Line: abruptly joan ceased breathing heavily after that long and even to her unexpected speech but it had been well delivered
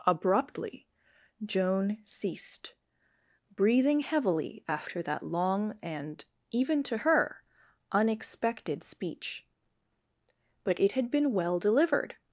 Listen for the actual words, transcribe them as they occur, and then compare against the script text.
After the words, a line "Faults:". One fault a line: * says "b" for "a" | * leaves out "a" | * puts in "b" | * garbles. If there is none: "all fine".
abruptly joan ceased breathing heavily after that long and even to her unexpected speech but it had been well delivered
Faults:
all fine